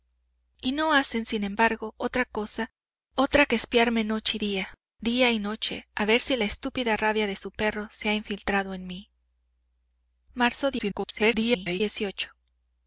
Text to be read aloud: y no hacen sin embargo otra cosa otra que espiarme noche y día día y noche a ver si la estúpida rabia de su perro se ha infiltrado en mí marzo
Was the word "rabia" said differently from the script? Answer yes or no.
no